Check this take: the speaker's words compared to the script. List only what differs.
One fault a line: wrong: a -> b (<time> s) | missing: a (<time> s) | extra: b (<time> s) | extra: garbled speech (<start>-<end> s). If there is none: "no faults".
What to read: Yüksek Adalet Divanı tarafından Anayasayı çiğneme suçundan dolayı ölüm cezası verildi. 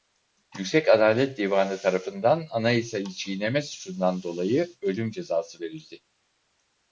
no faults